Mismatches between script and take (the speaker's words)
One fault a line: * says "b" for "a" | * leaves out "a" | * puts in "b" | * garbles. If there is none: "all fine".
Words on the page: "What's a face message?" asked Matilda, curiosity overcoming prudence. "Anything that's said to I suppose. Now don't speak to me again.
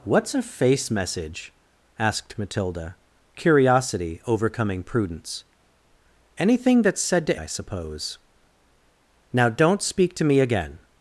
all fine